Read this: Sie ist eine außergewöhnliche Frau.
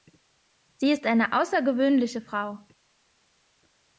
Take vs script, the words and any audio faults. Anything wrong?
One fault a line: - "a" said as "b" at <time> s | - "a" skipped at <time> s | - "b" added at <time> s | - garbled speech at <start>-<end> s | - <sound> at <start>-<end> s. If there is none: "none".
none